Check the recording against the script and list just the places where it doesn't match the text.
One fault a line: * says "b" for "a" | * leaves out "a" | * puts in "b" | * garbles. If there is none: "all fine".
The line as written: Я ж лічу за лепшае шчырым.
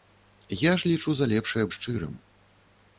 all fine